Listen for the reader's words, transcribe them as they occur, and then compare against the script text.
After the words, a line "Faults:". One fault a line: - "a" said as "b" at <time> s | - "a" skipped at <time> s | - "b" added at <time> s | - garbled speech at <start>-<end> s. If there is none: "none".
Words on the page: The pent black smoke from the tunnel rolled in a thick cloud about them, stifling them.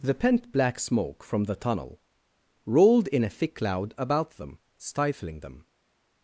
The pent black smoke from the tunnel rolled in a thick cloud about them, stifling them.
Faults:
none